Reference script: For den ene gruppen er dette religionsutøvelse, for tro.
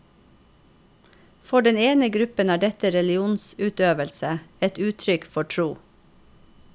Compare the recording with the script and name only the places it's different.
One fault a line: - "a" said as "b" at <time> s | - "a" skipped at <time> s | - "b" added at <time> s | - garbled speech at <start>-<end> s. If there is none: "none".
- "et uttrykk" added at 4.7 s